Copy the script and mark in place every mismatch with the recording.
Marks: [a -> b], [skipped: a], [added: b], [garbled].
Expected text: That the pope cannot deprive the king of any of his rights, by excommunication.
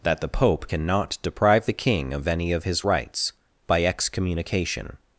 That the pope cannot deprive the king of any of his rights, by excommunication.